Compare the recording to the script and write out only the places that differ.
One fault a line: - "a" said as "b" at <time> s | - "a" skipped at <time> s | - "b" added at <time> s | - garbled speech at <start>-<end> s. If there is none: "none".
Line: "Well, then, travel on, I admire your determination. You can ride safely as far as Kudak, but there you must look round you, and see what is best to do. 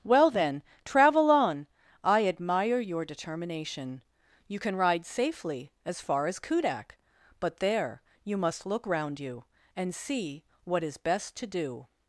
none